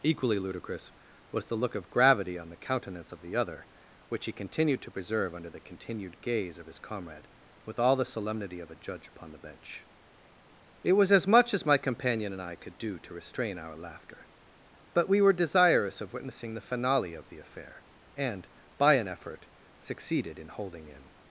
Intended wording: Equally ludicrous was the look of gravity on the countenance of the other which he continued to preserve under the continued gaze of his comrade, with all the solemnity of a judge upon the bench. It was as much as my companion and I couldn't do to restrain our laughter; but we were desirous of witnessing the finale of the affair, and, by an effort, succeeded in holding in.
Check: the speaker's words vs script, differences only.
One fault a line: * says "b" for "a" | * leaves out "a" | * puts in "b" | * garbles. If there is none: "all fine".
* says "could" for "couldn't"